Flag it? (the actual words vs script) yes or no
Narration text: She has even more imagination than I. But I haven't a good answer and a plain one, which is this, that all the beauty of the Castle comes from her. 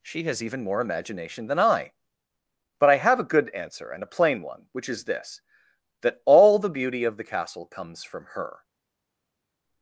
yes